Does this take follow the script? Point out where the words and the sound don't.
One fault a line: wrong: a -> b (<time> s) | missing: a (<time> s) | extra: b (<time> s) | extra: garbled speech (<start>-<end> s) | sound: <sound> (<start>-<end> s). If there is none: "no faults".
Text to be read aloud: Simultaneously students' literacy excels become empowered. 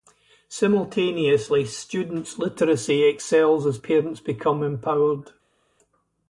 extra: as parents (3.7 s)